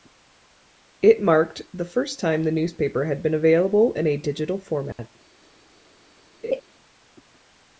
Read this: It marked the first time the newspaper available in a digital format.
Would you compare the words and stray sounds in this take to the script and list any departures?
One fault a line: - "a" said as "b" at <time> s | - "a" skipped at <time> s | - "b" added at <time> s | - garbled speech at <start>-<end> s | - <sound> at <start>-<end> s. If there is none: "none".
- "had been" added at 3.0 s
- dropout at 4.9-5.0 s
- laugh at 6.4-6.6 s